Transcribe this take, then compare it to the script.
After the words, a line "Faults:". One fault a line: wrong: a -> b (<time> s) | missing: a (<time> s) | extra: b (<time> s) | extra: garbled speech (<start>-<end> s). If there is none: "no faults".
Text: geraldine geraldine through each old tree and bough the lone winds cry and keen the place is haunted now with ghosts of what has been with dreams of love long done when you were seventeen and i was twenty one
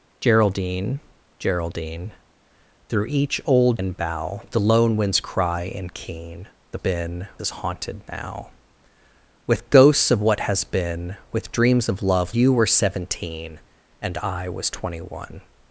geraldine geraldine through each old and bough the lone winds cry and keen the been is haunted now with ghosts of what has been with dreams of love you were seventeen and i was twenty one
Faults:
missing: tree (3.8 s)
wrong: place -> been (6.8 s)
missing: long done when (12.4 s)